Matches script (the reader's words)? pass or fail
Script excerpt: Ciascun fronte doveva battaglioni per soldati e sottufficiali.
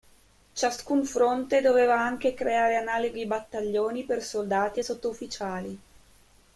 fail